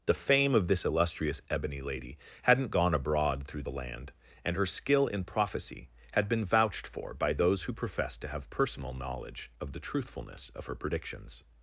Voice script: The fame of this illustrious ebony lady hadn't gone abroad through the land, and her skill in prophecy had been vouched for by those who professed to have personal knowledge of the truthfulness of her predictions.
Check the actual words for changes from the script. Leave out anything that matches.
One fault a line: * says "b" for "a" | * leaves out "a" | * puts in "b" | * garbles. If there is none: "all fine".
all fine